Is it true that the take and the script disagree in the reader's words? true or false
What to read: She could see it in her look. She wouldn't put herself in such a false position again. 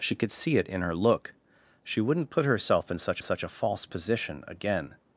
true